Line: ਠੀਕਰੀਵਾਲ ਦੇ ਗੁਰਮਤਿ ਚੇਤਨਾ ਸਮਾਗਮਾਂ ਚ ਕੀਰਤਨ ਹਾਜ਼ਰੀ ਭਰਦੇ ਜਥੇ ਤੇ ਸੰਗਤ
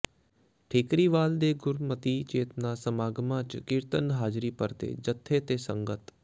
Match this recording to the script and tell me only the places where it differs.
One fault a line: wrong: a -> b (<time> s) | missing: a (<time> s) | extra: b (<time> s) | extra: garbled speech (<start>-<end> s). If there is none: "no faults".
no faults